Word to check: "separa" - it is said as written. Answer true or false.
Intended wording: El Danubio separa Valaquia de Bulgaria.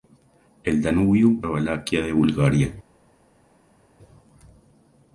false